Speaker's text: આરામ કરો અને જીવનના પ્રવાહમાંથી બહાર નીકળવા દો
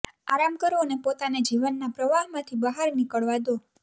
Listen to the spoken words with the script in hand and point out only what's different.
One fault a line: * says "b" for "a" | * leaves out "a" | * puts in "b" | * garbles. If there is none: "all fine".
* puts in "પોતાને"